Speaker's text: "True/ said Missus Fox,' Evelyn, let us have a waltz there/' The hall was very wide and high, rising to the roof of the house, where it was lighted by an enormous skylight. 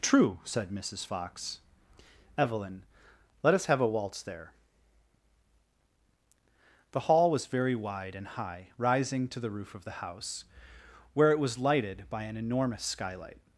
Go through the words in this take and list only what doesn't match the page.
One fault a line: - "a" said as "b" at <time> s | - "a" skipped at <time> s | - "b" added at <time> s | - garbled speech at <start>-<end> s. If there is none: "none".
none